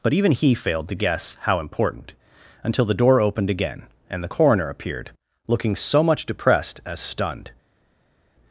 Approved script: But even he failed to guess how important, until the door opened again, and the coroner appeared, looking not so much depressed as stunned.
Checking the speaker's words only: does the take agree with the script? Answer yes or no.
no